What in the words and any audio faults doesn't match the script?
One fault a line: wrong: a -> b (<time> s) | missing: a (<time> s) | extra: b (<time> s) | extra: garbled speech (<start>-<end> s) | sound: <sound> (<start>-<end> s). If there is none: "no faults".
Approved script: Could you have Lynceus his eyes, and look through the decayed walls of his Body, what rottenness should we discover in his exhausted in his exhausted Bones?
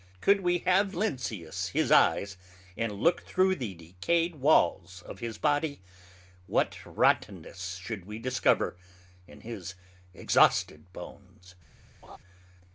wrong: you -> we (0.4 s)
missing: in his exhausted (10.9 s)
sound: laugh (12.0-12.2 s)